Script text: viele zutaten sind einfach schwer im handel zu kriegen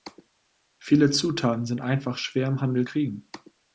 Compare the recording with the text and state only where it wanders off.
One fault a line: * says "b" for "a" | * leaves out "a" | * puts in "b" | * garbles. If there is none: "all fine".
* leaves out "zu"